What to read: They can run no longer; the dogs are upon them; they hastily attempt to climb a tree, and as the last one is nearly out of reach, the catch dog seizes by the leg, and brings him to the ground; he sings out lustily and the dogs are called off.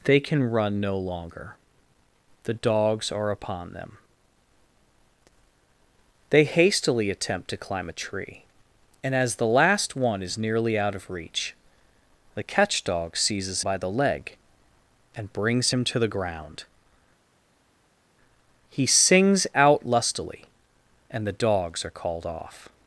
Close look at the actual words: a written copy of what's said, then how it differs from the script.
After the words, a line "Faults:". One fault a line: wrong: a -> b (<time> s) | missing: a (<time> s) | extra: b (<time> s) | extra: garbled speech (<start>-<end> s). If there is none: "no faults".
They can run no longer; the dogs are upon them; they hastily attempt to climb a tree, and as the last one is nearly out of reach, the catch dog seizes by the leg, and brings him to the ground; he sings out lustily and the dogs are called off.
Faults:
no faults